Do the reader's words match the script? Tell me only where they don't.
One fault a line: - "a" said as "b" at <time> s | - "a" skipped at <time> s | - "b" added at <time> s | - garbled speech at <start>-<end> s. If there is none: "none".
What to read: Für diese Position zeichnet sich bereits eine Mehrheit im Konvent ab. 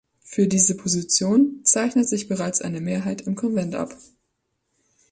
none